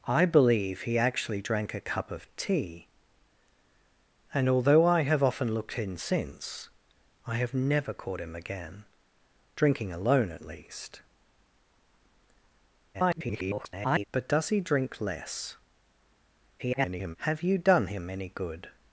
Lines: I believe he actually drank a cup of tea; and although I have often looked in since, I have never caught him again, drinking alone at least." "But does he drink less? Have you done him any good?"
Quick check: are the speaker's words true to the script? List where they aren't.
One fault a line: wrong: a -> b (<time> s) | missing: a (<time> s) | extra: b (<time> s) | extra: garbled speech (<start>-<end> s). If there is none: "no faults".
extra: garbled speech (12.9-14.1 s)
extra: garbled speech (16.6-17.2 s)